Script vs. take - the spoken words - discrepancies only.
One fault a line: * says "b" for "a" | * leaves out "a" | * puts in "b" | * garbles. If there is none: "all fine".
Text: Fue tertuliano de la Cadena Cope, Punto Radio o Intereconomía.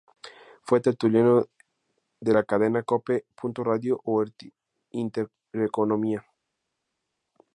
all fine